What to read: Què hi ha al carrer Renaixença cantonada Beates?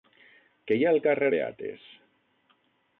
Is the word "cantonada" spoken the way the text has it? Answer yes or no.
no